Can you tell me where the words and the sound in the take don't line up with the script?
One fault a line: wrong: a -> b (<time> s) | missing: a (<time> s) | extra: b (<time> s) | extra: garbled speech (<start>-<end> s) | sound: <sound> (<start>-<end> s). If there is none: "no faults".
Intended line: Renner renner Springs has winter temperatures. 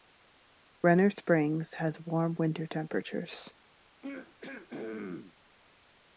missing: renner (1.1 s)
extra: warm (2.0 s)
sound: throat clearing (4.0-5.4 s)